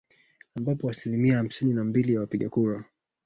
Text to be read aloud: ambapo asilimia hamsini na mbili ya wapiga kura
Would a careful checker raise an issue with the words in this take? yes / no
no